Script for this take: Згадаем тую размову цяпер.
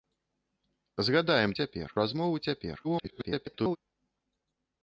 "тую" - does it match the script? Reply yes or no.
no